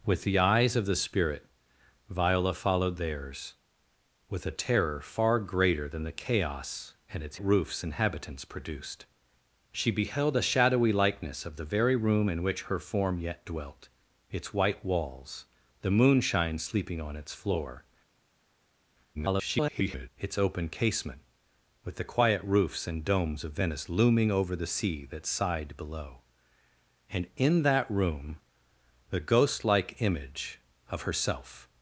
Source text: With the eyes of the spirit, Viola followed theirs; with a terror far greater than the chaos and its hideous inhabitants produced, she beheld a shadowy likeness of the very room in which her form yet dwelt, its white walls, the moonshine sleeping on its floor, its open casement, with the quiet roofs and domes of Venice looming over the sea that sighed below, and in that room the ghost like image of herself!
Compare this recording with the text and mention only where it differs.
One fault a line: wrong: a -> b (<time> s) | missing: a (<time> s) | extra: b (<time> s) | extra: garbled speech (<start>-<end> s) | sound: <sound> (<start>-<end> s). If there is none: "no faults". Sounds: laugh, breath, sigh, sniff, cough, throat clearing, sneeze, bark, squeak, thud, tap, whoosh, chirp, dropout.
wrong: hideous -> roofs (7.4 s)
extra: garbled speech (19.1-20.1 s)